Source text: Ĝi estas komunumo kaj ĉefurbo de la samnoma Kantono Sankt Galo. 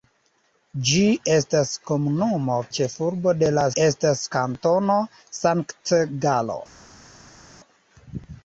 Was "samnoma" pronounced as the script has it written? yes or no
no